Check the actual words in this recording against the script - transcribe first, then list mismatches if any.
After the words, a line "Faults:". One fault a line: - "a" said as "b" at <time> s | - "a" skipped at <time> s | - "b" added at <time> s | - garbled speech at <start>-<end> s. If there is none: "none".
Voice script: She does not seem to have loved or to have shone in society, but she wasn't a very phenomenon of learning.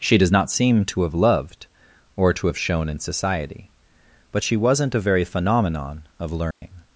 She does not seem to have loved or to have shone in society, but she wasn't a very phenomenon of learning.
Faults:
none